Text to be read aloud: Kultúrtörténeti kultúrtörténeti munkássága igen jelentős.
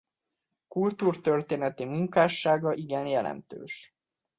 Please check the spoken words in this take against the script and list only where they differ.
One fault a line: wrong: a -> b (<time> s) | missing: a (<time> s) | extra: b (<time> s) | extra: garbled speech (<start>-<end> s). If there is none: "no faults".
missing: kultúrtörténeti (1.9 s)